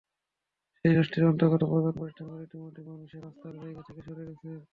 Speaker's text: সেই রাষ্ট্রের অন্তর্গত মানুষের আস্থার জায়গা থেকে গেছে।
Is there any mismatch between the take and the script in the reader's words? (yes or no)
yes